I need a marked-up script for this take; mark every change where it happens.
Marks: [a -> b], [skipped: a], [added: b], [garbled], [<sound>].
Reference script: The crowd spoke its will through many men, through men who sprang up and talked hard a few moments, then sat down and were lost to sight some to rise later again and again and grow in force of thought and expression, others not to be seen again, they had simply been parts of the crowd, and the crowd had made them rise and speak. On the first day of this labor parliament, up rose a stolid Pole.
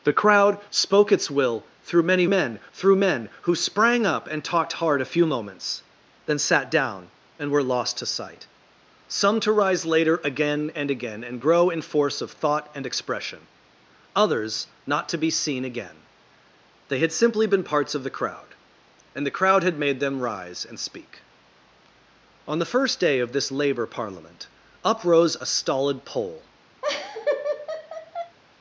The crowd spoke its will through many men, through men who sprang up and talked hard a few moments, then sat down and were lost to sight some to rise later again and again and grow in force of thought and expression, others not to be seen again, they had simply been parts of the crowd, and the crowd had made them rise and speak. On the first day of this labor parliament, up rose a stolid Pole. [laugh]